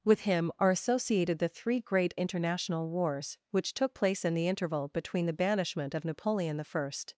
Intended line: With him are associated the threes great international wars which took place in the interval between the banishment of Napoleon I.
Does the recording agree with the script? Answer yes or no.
no